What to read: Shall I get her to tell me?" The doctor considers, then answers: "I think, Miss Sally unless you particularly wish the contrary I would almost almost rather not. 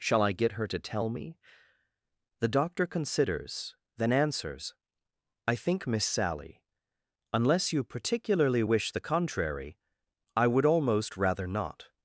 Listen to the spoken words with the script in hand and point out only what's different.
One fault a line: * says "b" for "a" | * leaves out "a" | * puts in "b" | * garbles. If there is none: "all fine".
* leaves out "almost"